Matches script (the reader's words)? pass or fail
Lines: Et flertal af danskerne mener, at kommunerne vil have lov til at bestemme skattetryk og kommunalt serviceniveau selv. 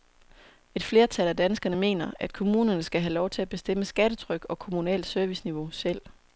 fail